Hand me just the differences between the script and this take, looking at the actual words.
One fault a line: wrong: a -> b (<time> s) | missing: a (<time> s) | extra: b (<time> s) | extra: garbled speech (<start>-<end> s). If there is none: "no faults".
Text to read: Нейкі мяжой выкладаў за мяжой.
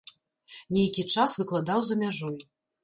wrong: мяжой -> час (1.2 s)